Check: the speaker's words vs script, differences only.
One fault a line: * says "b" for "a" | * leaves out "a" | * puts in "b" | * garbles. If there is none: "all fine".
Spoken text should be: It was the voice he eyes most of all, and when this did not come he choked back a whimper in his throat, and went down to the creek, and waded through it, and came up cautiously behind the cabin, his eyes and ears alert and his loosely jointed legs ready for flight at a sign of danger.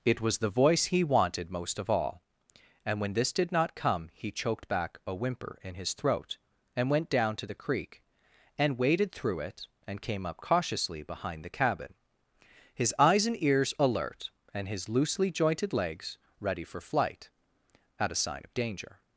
* says "wanted" for "eyes"